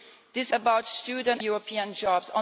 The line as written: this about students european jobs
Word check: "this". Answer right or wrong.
right